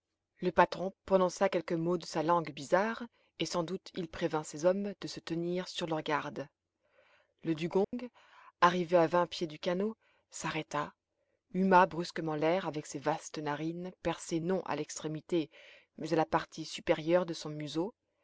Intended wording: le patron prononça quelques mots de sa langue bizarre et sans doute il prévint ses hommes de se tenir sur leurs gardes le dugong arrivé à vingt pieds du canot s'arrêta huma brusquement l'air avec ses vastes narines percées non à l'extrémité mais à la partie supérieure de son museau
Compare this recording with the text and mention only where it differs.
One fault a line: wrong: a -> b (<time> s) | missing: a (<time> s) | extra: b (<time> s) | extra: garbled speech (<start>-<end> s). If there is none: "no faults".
no faults